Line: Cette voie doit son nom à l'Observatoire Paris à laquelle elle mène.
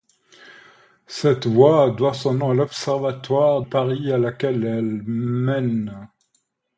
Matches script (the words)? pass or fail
pass